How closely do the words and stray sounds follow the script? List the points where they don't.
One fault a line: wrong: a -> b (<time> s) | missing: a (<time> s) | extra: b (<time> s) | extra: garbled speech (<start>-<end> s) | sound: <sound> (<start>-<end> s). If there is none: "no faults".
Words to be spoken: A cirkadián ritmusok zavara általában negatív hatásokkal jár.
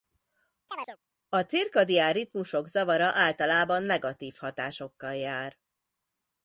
sound: chirp (0.7-1.0 s)